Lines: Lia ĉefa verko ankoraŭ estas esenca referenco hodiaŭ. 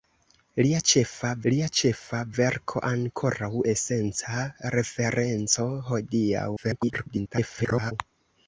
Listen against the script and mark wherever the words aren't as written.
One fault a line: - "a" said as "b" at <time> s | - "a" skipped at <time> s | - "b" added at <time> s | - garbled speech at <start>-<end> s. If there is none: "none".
- "lia ĉefa" added at 1.5 s
- "estas" skipped at 3.5 s
- garbled speech at 6.6-7.9 s